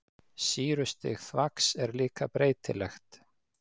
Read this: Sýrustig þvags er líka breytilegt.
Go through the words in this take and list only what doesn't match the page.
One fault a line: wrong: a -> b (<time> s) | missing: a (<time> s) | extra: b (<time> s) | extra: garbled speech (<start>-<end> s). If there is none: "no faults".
no faults